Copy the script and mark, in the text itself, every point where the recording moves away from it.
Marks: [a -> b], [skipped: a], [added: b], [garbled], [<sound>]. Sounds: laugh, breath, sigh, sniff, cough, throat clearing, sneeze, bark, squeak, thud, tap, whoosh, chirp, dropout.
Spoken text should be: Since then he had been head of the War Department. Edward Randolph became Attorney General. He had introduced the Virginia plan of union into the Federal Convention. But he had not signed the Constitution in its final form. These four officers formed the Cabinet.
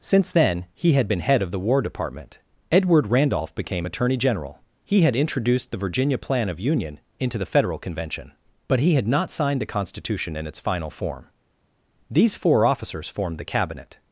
Since then he had been head of the War Department. Edward Randolph became Attorney General. He had introduced the Virginia plan of union into the Federal Convention. But he had not signed the Constitution in its final form. These four officers formed the Cabinet.